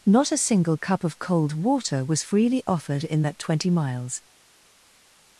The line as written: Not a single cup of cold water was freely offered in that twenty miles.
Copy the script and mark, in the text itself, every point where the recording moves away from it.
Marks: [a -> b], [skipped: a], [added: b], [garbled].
Not a single cup of cold water was freely offered in that twenty miles.